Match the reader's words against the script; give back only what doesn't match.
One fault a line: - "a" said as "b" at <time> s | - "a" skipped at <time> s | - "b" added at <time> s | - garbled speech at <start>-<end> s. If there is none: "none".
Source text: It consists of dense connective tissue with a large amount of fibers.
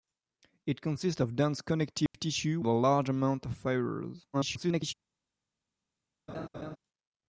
- "with" skipped at 2.6 s
- garbled speech at 4.3-4.9 s